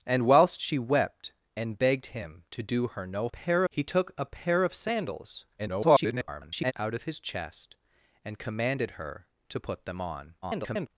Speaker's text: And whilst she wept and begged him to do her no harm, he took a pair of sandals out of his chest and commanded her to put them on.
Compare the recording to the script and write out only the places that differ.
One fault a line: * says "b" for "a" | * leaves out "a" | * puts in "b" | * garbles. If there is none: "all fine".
* says "pair" for "harm"
* garbles
* garbles